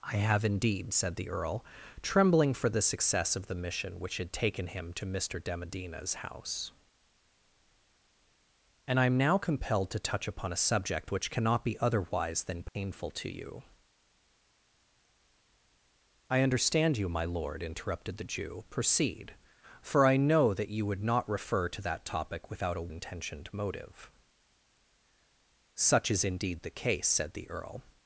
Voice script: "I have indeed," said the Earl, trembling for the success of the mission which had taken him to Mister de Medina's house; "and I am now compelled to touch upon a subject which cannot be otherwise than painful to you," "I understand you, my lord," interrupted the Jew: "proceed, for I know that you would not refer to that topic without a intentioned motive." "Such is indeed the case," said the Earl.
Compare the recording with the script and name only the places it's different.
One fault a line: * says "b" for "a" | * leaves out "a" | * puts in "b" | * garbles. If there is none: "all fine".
all fine